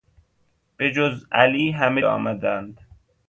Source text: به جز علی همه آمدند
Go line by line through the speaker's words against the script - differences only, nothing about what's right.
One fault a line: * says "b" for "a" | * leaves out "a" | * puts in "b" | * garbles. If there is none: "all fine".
all fine